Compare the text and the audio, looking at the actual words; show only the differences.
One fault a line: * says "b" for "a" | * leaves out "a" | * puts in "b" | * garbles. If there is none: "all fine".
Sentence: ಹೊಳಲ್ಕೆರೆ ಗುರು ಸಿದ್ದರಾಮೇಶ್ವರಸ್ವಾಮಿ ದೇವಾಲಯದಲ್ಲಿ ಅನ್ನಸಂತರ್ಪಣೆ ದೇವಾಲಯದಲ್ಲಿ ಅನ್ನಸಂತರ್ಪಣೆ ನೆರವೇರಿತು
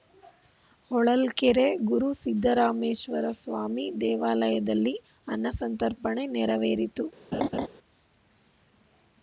* leaves out "ದೇವಾಲಯದಲ್ಲಿ ಅನ್ನಸಂತರ್ಪಣೆ"